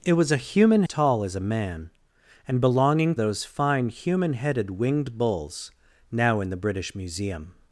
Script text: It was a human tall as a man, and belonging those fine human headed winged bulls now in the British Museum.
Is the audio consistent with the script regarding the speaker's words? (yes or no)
yes